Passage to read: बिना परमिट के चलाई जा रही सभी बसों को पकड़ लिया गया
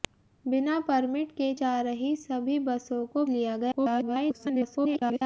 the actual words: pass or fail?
fail